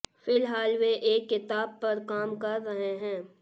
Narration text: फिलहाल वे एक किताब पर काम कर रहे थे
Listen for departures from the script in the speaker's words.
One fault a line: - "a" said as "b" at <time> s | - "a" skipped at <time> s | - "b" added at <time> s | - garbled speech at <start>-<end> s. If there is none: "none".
- "थे" said as "हैं" at 3.0 s